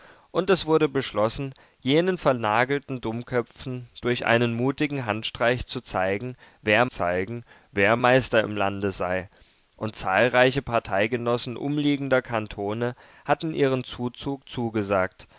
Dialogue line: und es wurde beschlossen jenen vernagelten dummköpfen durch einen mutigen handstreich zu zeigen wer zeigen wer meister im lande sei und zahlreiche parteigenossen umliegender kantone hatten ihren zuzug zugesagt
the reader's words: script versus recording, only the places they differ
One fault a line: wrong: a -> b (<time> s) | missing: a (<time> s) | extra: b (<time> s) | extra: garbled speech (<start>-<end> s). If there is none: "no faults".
no faults